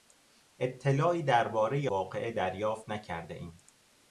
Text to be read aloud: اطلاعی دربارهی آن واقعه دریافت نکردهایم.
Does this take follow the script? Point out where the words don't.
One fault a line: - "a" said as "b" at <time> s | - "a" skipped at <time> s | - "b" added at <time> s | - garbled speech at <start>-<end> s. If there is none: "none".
- "آن" skipped at 1.9 s